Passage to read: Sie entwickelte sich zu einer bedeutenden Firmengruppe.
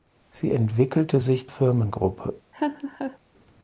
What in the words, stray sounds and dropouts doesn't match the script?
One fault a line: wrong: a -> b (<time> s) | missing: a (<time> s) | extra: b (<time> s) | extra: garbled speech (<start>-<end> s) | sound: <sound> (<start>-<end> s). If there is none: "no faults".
missing: zu einer bedeutenden (1.5 s)
sound: laugh (2.5-3.2 s)